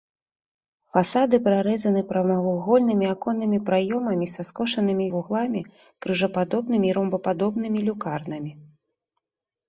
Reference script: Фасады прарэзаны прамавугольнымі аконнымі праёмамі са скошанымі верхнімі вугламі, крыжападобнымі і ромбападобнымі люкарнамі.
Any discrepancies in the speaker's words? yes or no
yes